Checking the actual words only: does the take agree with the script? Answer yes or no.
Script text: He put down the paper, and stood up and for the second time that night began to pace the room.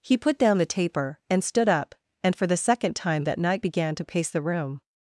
no